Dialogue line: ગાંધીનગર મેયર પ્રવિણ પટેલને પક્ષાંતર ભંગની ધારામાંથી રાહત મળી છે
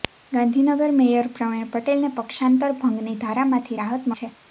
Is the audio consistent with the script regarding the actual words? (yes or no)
no